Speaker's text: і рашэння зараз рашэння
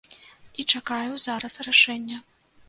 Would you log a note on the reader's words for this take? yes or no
yes